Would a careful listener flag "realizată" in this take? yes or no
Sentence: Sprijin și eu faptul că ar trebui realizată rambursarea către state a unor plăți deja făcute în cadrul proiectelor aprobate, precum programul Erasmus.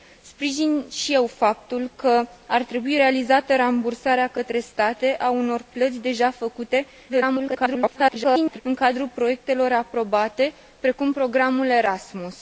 no